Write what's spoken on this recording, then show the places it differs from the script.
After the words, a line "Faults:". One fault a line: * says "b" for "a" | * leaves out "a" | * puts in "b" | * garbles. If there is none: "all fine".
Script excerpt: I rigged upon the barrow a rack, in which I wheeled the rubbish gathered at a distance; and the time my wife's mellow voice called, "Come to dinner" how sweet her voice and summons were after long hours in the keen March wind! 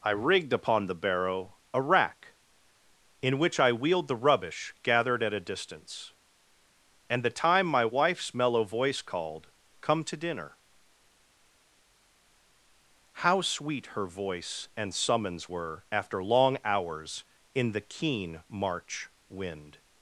I rigged upon the barrow a rack, in which I wheeled the rubbish gathered at a distance; and the time my wife's mellow voice called, "Come to dinner" how sweet her voice and summons were after long hours in the keen March wind!
Faults:
all fine